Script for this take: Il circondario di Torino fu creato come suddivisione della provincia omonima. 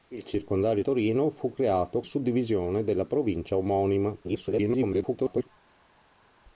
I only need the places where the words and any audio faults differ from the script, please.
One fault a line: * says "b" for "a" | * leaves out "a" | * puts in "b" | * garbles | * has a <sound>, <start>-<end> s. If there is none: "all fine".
* leaves out "di"
* leaves out "come"
* garbles